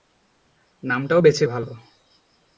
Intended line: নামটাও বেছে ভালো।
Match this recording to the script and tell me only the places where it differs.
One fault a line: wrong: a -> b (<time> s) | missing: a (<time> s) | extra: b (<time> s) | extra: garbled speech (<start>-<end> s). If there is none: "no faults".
no faults